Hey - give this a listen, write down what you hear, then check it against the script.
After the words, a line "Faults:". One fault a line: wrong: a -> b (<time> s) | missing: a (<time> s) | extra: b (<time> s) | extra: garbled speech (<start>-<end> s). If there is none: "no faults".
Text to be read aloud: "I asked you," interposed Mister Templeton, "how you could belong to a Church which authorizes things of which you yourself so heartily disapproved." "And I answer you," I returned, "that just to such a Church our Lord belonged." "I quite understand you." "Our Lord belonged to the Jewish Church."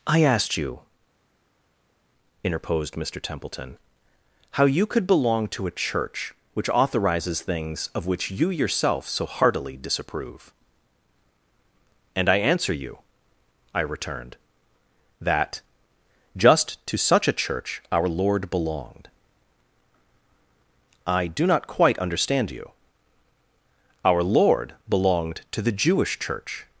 "I asked you," interposed Mister Templeton, "how you could belong to a Church which authorizes things of which you yourself so heartily disapprove." "And I answer you," I returned, "that just to such a Church our Lord belonged." "I do not quite understand you." "Our Lord belonged to the Jewish Church."
Faults:
wrong: disapproved -> disapprove (9.8 s)
extra: do not (21.3 s)